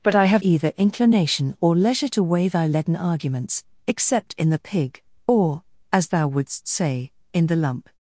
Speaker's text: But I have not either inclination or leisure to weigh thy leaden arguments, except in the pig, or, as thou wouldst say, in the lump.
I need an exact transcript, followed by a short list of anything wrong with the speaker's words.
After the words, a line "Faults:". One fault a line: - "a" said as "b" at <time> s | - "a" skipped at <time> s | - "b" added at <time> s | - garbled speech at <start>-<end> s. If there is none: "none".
But I have either inclination or leisure to weigh thy leaden arguments, except in the pig, or, as thou wouldst say, in the lump.
Faults:
- "not" skipped at 0.4 s